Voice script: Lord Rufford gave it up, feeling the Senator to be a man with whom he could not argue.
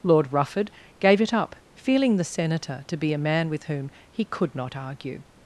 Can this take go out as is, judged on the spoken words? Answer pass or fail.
pass